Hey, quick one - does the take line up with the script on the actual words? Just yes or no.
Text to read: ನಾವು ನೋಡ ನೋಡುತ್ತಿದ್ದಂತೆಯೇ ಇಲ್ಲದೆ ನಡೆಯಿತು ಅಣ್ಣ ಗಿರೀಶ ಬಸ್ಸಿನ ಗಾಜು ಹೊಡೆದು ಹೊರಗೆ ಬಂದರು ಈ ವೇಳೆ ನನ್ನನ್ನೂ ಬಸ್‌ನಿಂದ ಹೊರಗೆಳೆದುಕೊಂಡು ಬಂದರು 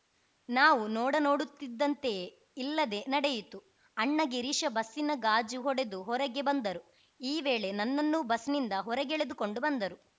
yes